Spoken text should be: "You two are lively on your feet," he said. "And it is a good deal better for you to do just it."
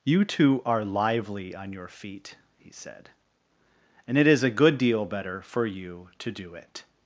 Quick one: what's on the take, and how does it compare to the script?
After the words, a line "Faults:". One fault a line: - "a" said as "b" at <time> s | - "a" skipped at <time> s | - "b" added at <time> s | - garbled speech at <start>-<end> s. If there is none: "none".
"You two are lively on your feet," he said. "And it is a good deal better for you to do it."
Faults:
- "just" skipped at 6.5 s